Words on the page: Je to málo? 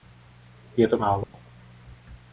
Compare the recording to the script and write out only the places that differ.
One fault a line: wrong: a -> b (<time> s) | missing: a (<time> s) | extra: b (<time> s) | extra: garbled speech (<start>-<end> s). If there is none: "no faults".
no faults